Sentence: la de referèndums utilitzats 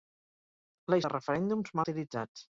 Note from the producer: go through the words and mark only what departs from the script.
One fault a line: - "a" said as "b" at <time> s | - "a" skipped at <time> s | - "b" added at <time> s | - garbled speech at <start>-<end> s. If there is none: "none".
none